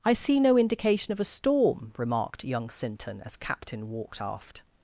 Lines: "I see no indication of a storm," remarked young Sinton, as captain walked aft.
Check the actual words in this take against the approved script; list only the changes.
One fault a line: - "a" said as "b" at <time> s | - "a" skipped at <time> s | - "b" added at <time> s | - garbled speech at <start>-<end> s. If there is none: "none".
none